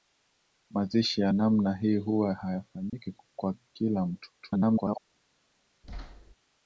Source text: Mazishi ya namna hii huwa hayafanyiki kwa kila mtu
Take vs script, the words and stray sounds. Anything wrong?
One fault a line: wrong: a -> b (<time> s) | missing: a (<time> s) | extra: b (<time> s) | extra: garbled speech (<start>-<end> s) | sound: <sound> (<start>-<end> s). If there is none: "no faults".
sound: dropout (2.9-2.9 s)
extra: garbled speech (4.4-5.0 s)
sound: thud (5.8-6.3 s)